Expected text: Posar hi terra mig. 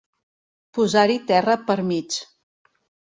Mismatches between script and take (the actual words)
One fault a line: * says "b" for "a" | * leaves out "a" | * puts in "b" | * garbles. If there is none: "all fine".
* puts in "per"